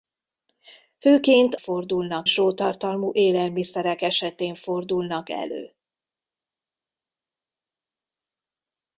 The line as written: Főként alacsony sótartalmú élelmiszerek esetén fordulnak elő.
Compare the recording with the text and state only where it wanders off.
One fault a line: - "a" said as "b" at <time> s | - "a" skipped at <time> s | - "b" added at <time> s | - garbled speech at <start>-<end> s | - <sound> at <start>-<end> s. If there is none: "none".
- "alacsony" said as "fordulnak" at 1.6 s